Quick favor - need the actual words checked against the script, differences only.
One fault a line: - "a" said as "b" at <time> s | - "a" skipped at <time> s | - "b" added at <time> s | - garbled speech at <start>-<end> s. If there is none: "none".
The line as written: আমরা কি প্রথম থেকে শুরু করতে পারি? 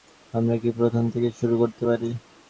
none